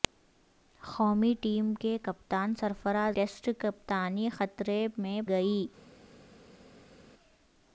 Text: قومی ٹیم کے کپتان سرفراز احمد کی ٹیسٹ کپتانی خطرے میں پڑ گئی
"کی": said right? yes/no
no